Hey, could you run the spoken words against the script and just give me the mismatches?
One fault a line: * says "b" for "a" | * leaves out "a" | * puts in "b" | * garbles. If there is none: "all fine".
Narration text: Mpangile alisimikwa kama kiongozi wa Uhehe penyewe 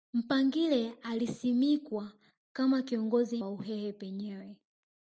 all fine